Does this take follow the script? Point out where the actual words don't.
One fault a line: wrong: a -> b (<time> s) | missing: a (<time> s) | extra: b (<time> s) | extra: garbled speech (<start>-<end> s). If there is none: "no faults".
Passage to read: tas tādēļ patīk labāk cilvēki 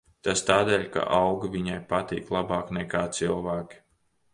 extra: ka augi viņai (1.0 s)
extra: nekā (2.8 s)